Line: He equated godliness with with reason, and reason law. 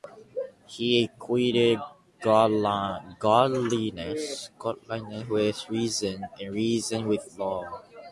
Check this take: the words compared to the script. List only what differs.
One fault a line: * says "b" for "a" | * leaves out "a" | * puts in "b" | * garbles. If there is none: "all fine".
* leaves out "with"
* puts in "with"